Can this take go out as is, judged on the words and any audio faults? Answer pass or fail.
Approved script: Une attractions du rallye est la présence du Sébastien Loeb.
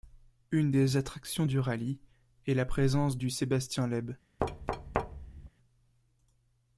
fail